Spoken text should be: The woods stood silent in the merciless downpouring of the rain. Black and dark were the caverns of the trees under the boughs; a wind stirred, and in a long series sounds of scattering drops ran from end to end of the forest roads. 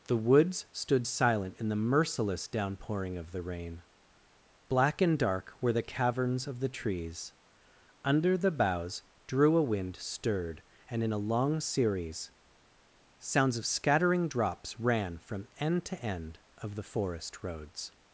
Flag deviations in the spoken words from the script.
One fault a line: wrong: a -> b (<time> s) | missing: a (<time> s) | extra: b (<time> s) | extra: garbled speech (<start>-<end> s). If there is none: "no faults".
extra: drew (9.3 s)